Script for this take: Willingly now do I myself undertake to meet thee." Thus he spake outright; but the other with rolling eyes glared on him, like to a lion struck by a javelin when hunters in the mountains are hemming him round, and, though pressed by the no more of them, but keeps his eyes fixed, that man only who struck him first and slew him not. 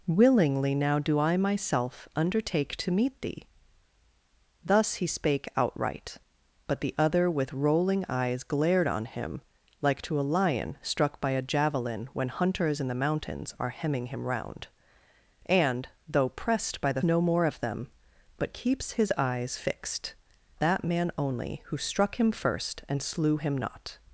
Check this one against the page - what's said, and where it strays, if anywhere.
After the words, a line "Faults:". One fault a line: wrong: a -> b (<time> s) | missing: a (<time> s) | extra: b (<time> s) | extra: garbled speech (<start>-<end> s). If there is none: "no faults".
Willingly now do I myself undertake to meet thee." Thus he spake outright; but the other with rolling eyes glared on him, like to a lion struck by a javelin when hunters in the mountains are hemming him round, and, though pressed by the no more of them, but keeps his eyes fixed, that man only who struck him first and slew him not.
Faults:
no faults